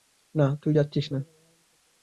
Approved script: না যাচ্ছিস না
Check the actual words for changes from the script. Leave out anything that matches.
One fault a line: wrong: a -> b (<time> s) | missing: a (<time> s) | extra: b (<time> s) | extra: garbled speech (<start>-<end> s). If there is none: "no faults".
extra: তুই (0.6 s)